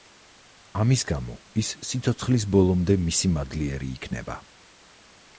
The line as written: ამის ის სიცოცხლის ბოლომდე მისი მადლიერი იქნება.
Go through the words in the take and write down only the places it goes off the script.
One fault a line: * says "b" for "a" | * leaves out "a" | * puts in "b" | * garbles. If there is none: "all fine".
* puts in "გამო"